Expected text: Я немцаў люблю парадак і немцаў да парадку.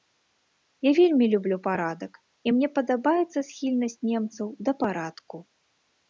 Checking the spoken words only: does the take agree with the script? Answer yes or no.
no